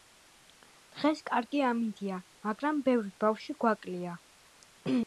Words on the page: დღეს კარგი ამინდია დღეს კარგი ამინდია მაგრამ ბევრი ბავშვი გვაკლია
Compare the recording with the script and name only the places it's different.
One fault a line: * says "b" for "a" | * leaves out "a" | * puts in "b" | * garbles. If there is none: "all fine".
* leaves out "დღეს კარგი ამინდია"